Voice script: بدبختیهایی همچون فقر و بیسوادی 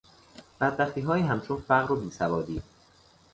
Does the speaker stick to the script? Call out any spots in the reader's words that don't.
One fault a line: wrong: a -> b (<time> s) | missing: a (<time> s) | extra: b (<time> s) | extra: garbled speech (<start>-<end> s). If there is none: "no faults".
no faults